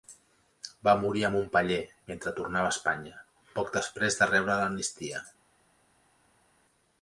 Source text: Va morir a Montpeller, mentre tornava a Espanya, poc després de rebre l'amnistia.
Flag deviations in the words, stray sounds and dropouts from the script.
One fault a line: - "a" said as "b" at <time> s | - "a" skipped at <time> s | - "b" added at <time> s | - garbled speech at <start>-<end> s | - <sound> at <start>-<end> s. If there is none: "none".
none